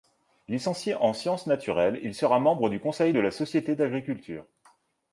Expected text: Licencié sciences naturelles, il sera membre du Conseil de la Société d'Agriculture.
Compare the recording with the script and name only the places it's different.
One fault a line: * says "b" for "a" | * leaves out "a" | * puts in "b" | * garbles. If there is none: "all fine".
* puts in "en"